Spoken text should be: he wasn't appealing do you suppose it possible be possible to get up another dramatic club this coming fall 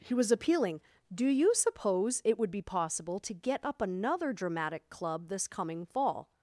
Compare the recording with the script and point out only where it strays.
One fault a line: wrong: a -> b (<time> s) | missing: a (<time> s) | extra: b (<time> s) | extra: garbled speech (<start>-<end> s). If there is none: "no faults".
wrong: wasn't -> was (0.1 s)
wrong: possible -> would (2.4 s)